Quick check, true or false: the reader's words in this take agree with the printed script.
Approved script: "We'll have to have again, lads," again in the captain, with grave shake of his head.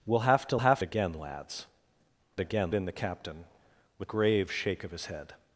true